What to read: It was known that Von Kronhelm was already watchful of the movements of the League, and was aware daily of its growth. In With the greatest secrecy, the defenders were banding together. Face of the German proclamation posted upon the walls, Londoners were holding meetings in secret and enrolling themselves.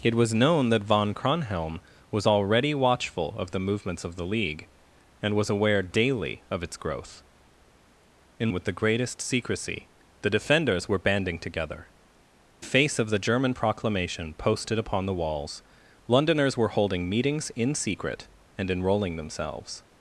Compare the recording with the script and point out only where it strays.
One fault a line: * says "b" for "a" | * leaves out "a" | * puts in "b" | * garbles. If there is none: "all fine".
all fine